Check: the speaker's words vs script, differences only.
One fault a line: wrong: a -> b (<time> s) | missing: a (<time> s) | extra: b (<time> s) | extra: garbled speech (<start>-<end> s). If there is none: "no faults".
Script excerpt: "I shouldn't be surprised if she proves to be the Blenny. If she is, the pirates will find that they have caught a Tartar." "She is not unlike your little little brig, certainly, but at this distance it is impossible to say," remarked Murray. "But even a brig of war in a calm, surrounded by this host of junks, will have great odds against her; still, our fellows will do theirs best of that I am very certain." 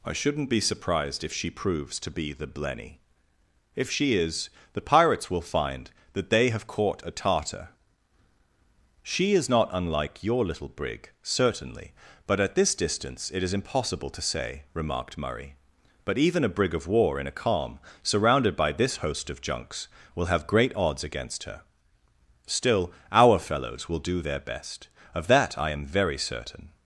missing: little (10.7 s)
wrong: theirs -> their (24.2 s)